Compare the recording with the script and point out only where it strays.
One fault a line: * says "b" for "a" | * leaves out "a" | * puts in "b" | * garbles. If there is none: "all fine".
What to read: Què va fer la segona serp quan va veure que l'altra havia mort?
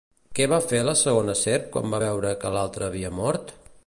all fine